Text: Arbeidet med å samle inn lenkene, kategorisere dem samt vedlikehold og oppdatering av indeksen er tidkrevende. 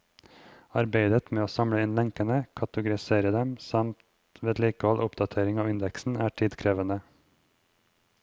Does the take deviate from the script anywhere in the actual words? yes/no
no